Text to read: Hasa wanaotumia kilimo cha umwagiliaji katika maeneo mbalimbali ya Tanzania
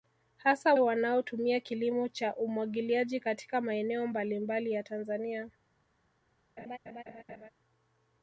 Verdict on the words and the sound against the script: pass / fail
fail